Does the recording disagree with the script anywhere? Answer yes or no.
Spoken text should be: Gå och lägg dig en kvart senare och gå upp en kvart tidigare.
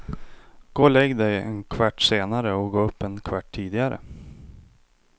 no